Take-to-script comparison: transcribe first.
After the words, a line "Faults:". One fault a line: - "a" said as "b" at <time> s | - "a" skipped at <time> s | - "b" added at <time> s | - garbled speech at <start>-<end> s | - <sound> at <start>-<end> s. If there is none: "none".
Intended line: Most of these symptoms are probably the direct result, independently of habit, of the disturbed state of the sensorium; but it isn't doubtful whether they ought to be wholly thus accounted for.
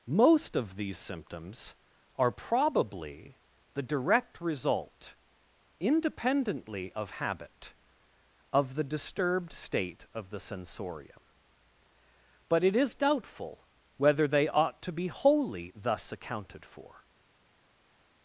Most of these symptoms are probably the direct result, independently of habit, of the disturbed state of the sensorium; but it is doubtful whether they ought to be wholly thus accounted for.
Faults:
- "isn't" said as "is" at 12.8 s